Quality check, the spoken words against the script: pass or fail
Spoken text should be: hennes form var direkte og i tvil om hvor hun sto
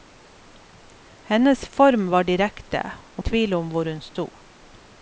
pass